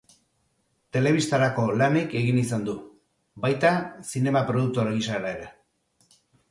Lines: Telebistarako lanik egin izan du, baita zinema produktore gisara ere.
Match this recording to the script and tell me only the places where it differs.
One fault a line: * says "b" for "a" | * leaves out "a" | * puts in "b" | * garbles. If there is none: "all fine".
all fine